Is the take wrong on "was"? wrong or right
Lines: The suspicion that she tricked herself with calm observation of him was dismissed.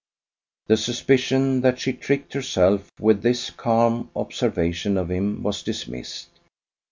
right